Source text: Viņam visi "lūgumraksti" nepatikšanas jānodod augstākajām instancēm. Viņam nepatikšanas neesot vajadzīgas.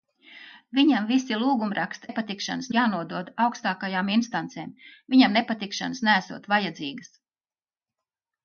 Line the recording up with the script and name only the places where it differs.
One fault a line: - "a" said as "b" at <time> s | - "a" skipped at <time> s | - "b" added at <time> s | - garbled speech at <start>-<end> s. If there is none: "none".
none